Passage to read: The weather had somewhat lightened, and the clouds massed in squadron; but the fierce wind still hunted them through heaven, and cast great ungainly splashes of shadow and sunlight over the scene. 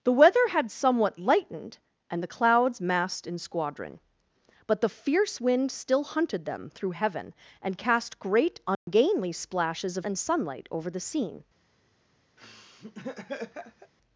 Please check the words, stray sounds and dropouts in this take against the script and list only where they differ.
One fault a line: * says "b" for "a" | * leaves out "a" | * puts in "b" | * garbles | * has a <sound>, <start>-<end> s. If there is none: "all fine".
* has a dropout, 8.7-8.9 s
* leaves out "shadow"
* has a laugh, 12.4-13.9 s